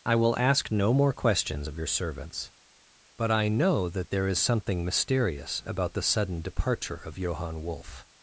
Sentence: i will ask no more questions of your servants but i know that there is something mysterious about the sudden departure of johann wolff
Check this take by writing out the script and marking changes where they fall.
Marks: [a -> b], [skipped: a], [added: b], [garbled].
i will ask no more questions of your servants but i know that there is something mysterious about the sudden departure of johann wolff